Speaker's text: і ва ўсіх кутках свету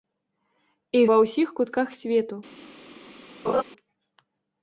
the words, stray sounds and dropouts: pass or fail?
fail